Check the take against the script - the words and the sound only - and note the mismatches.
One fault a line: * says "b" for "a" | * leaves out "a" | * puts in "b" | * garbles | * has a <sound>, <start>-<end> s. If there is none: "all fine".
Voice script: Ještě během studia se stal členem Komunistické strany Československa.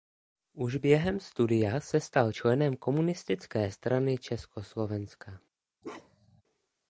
* says "Už" for "Ještě"
* has a bark, 5.8-6.4 s